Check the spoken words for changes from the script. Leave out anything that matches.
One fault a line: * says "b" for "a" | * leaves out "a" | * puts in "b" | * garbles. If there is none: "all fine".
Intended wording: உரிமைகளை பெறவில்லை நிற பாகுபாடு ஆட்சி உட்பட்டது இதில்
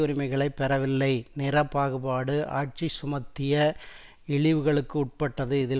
* puts in "சுமத்திய இழிவுகளுக்கு"